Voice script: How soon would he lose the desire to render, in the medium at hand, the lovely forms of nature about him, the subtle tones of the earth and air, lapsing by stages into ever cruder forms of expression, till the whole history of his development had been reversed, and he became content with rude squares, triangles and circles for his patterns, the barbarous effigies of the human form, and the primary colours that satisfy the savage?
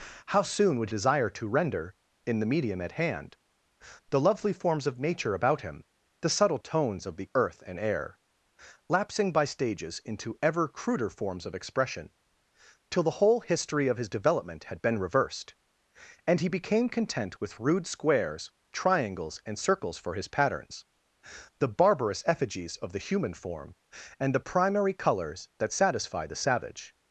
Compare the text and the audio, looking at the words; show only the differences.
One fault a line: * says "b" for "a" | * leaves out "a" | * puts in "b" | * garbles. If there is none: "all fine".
* leaves out "he lose the"